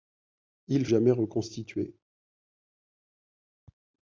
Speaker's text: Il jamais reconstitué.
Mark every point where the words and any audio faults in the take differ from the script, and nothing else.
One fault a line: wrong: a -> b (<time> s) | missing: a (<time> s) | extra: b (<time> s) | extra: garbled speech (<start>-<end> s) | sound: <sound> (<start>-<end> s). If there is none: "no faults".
no faults